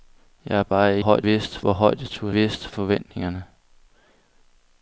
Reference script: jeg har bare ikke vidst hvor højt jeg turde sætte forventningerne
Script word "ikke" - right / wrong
wrong